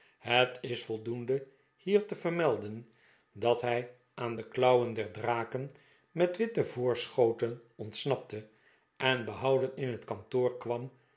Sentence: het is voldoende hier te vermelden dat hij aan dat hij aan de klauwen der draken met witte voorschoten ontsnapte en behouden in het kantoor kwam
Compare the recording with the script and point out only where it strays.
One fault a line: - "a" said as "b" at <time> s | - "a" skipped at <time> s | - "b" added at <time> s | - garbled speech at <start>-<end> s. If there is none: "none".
- "dat hij aan" skipped at 4.3 s